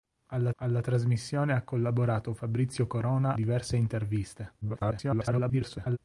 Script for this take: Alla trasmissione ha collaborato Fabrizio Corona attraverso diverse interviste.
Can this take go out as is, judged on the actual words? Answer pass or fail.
fail